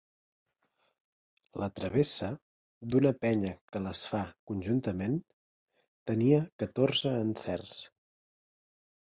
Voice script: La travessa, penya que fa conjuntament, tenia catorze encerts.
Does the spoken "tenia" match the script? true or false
true